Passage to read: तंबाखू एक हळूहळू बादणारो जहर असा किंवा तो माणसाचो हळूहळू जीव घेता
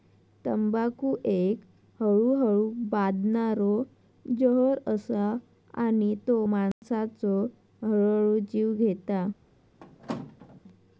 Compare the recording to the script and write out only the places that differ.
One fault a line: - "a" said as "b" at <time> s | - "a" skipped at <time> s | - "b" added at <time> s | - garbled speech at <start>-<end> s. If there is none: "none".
- "किंवा" said as "आणि" at 5.8 s